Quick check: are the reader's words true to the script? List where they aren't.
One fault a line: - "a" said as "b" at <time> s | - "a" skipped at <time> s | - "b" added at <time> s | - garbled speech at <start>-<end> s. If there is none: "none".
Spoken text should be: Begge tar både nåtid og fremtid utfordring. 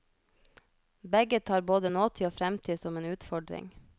- "som en" added at 2.8 s